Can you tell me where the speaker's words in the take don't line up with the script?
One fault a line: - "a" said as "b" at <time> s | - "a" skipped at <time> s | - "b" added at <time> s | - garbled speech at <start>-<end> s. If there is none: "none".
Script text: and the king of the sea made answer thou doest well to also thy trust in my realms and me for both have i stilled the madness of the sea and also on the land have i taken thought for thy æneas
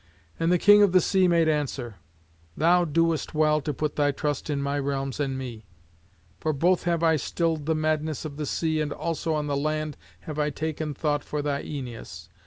- "also" said as "put" at 3.7 s